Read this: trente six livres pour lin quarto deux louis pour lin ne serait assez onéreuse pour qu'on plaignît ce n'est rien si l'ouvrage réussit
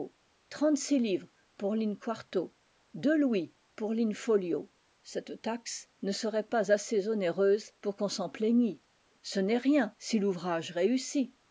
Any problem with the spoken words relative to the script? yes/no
yes